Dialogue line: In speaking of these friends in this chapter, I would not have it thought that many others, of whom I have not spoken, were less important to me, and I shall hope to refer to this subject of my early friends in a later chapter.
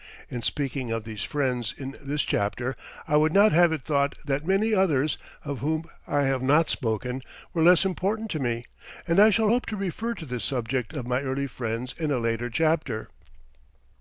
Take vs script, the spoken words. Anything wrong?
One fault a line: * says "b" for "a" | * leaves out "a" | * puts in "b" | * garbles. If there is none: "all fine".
all fine